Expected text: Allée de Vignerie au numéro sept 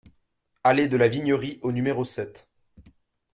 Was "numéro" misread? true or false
false